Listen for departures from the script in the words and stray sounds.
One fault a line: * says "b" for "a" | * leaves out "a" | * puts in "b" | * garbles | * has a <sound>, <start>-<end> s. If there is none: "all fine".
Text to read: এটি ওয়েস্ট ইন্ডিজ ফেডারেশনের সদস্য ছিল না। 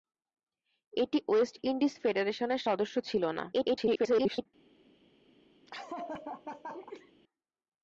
* garbles
* has a laugh, 5.7-7.1 s